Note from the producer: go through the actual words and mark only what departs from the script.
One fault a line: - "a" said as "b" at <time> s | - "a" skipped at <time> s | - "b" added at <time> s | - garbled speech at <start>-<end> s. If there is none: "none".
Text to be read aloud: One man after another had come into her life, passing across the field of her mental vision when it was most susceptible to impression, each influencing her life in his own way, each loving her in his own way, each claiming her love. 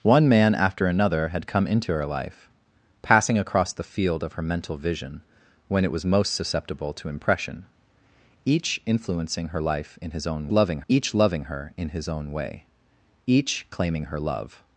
- "way" said as "loving" at 10.5 s